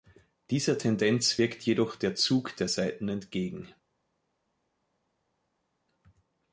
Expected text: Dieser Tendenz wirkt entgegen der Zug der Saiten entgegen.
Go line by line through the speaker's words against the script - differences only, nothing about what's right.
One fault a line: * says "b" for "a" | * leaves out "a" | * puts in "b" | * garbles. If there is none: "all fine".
* says "jedoch" for "entgegen"